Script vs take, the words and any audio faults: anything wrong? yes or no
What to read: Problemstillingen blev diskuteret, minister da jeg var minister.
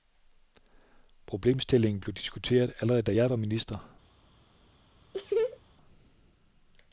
yes